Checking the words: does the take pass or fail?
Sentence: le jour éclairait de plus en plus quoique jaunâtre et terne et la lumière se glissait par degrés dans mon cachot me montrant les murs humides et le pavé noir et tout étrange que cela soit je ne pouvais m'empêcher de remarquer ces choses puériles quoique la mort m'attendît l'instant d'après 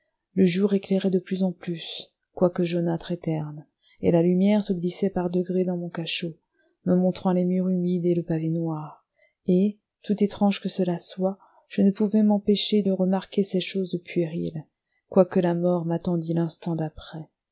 pass